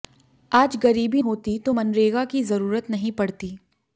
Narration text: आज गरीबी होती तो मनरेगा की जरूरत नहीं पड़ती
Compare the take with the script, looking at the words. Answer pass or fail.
pass